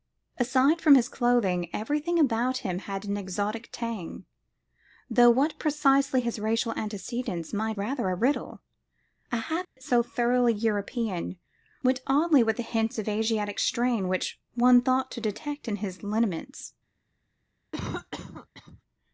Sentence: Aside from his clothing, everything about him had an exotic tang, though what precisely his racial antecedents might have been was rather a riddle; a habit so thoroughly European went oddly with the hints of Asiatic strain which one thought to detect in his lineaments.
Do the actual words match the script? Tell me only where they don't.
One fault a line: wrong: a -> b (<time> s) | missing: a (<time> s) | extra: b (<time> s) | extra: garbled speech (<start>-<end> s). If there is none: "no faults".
missing: have been was (7.8 s)